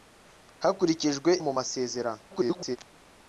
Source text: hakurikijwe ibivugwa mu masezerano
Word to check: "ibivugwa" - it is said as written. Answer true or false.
false